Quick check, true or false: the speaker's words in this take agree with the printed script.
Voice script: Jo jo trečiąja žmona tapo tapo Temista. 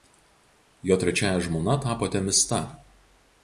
false